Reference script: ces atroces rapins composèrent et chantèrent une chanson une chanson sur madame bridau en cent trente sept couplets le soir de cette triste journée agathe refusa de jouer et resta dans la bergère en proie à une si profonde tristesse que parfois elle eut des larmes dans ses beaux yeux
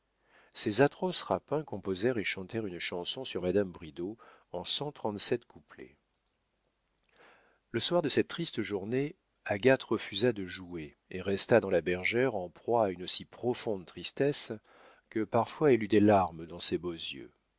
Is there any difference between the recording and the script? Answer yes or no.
yes